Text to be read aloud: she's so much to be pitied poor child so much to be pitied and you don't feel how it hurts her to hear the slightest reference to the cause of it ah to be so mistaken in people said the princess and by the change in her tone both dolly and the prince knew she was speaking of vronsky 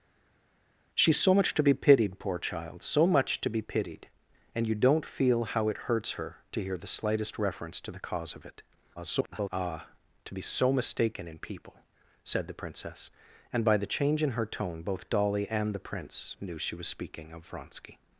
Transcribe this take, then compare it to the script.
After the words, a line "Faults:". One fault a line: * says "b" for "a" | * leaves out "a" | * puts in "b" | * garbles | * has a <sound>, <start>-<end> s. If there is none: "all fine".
she's so much to be pitied poor child so much to be pitied and you don't feel how it hurts her to hear the slightest reference to the cause of it [garbled] ah to be so mistaken in people said the princess and by the change in her tone both dolly and the prince knew she was speaking of vronsky
Faults:
* garbles